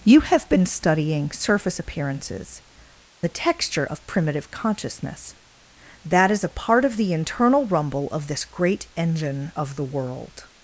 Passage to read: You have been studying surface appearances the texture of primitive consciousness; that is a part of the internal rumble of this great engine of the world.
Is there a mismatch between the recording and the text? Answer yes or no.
no